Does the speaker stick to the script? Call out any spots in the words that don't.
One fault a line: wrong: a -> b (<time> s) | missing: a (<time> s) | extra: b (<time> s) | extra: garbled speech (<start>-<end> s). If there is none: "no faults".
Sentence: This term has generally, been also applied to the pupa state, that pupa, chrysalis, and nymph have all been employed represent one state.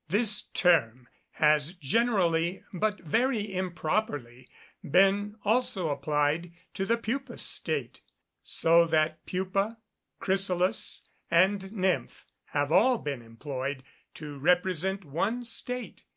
extra: but very improperly (2.7 s)
extra: so (8.4 s)
extra: to (14.1 s)